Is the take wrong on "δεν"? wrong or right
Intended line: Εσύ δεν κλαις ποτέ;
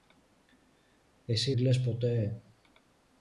wrong